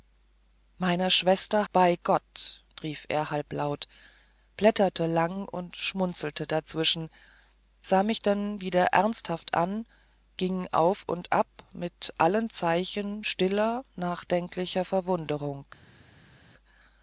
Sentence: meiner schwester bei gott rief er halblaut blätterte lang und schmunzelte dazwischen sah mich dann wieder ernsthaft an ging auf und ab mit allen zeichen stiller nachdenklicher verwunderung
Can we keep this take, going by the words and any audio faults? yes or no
yes